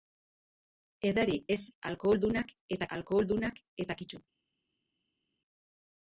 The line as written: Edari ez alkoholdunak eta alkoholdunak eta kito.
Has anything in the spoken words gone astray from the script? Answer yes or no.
no